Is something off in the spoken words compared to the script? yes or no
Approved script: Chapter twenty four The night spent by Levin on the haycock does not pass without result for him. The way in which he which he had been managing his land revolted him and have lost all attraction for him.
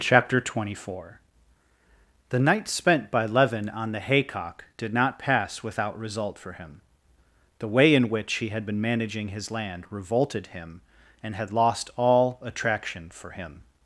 yes